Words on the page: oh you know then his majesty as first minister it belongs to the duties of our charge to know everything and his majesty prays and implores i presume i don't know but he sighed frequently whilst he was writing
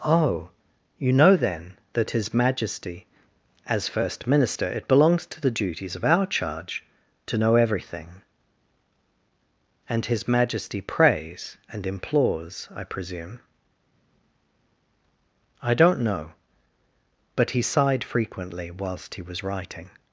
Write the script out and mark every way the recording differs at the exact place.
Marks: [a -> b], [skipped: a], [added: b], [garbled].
oh you know then [added: that] his majesty as first minister it belongs to the duties of our charge to know everything and his majesty prays and implores i presume i don't know but he sighed frequently whilst he was writing